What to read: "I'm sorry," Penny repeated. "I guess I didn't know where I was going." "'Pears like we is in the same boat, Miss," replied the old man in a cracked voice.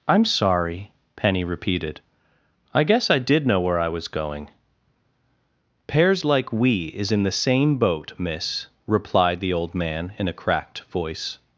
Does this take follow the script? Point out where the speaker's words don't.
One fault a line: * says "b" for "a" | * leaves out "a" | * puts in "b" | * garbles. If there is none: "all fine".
* says "did" for "didn't"